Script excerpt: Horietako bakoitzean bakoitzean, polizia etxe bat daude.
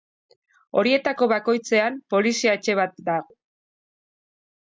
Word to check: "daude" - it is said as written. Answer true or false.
false